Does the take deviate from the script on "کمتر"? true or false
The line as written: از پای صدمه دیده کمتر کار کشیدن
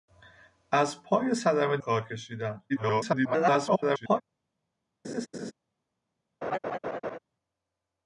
true